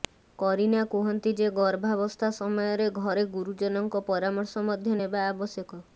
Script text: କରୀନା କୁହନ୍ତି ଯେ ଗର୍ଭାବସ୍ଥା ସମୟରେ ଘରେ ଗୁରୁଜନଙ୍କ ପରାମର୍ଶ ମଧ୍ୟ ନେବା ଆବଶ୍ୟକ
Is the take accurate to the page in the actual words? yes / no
yes